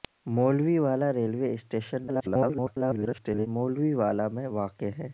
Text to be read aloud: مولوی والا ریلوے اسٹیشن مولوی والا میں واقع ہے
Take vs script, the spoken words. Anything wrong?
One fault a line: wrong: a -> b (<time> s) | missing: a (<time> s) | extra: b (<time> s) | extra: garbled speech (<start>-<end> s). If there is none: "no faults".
extra: garbled speech (2.1-3.5 s)